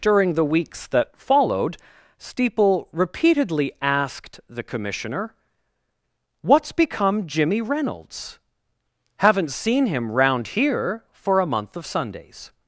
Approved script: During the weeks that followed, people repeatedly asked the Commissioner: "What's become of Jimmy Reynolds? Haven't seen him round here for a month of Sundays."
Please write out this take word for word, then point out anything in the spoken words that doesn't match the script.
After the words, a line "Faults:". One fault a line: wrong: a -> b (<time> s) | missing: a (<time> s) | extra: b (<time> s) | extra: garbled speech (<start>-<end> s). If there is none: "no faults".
During the weeks that followed, steeple repeatedly asked the Commissioner: "What's become Jimmy Reynolds? Haven't seen him round here for a month of Sundays."
Faults:
wrong: people -> steeple (2.2 s)
missing: of (7.3 s)